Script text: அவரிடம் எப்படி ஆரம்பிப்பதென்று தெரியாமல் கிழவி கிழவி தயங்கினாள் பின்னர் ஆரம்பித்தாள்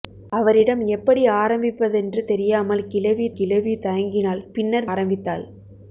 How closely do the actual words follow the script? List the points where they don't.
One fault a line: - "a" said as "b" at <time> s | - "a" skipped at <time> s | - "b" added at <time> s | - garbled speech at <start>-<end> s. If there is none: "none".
none